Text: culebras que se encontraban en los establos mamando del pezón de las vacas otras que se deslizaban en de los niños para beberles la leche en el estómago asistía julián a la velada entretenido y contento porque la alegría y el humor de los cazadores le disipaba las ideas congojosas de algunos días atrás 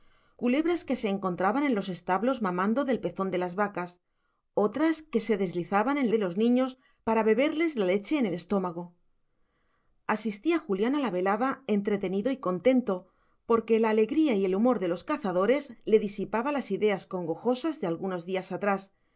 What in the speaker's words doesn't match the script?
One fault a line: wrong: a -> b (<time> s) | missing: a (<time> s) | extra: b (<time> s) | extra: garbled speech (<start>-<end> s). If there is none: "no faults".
no faults